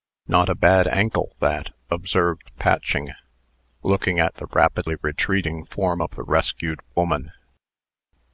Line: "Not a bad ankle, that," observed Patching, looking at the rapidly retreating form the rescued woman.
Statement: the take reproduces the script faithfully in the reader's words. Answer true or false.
false